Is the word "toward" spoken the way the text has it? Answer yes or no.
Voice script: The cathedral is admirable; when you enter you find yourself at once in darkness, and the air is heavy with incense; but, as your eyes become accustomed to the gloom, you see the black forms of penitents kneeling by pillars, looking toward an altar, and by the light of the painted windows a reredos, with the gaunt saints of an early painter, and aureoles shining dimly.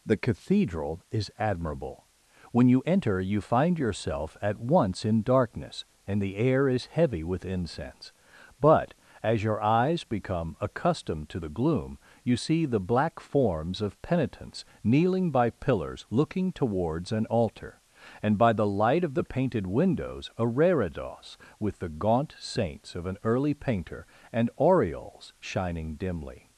no